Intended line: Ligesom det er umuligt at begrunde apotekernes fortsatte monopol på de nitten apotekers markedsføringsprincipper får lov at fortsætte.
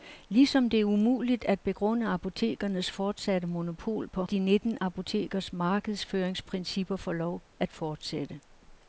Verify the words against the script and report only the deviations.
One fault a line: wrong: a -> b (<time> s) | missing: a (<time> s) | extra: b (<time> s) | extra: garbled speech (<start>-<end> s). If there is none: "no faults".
no faults